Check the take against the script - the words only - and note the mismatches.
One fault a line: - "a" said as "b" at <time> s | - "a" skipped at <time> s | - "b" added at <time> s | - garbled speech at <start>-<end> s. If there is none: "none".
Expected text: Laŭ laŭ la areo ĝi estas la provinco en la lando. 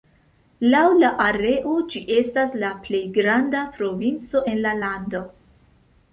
- "laŭ" skipped at 0.8 s
- "plej granda" added at 2.9 s